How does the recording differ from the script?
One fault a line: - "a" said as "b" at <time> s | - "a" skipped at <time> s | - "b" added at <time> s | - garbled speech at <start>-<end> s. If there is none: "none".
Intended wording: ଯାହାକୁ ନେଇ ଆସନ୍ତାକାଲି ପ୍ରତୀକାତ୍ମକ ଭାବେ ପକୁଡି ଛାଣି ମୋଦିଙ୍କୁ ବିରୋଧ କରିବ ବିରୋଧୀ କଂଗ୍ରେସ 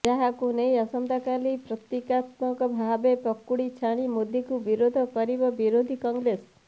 none